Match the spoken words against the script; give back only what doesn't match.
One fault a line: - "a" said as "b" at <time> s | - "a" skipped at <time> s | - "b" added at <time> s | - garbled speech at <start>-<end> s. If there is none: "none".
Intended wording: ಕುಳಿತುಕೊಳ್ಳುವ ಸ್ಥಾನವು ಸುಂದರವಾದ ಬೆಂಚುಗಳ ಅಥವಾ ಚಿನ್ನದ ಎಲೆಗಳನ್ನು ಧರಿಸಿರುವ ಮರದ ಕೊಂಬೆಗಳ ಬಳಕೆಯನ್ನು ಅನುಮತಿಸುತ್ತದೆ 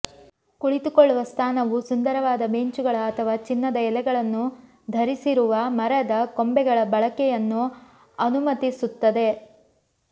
none